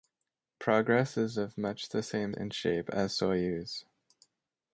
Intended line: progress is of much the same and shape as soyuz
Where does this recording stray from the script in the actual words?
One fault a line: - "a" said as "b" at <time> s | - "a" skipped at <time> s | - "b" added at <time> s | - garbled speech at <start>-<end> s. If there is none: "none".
none